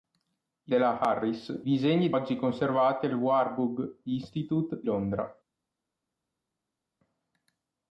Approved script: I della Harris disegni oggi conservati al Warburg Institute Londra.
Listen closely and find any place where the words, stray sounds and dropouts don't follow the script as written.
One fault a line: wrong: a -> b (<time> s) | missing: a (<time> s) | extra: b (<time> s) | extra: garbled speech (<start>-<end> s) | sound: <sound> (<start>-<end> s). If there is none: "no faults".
no faults